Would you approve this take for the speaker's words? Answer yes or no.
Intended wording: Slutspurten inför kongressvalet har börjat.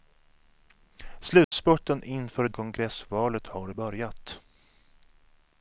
yes